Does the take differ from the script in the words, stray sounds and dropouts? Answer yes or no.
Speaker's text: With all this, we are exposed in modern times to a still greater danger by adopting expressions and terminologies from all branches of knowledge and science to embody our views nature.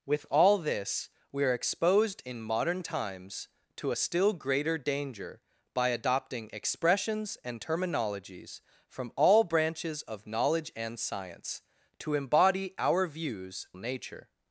no